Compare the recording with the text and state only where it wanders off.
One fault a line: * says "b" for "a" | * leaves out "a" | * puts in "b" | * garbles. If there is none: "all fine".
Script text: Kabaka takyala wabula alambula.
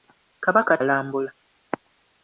* leaves out "takyala wabula"